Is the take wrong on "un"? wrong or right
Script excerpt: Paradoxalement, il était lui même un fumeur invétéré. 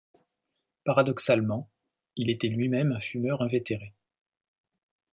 right